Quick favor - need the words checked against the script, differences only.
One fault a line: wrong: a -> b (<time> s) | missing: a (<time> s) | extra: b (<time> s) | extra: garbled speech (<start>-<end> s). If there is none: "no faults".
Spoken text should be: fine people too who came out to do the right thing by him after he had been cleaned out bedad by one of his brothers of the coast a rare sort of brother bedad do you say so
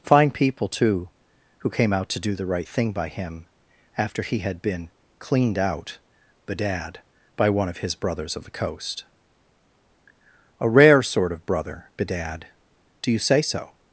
no faults